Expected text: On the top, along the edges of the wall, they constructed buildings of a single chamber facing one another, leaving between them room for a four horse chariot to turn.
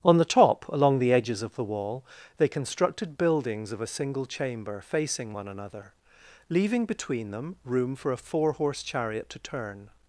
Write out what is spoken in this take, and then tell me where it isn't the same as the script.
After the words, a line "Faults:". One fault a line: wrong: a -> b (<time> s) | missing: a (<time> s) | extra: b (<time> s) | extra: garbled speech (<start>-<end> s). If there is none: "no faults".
On the top, along the edges of the wall, they constructed buildings of a single chamber facing one another, leaving between them room for a four horse chariot to turn.
Faults:
no faults